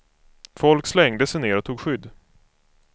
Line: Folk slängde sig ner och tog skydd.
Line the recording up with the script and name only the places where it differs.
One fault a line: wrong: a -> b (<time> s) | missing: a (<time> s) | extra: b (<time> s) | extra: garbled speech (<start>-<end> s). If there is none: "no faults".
no faults